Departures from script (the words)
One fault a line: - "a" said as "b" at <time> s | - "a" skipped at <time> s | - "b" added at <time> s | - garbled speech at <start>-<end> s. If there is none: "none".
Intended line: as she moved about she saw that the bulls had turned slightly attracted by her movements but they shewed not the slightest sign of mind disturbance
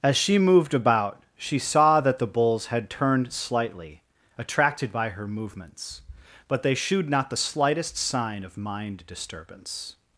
none